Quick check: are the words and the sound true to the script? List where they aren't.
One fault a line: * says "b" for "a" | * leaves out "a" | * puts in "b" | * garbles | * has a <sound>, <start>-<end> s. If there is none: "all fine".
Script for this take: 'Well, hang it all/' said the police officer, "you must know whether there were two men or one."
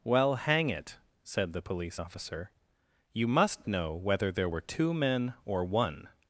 * leaves out "all"